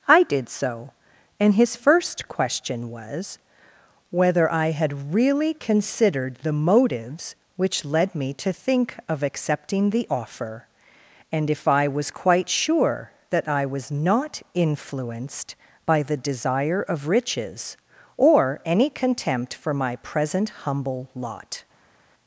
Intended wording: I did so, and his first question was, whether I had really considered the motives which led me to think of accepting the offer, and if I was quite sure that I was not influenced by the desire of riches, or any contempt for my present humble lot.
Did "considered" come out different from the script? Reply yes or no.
no